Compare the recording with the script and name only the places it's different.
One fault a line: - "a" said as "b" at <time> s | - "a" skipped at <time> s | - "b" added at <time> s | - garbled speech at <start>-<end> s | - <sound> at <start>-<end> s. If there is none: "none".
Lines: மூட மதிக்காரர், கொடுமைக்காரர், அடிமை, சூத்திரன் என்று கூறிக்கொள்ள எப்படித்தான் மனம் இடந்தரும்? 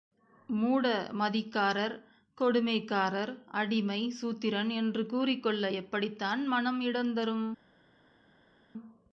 none